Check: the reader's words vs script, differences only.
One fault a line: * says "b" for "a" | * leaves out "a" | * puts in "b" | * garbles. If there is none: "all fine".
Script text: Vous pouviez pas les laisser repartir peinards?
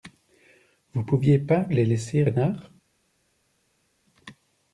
* leaves out "repartir"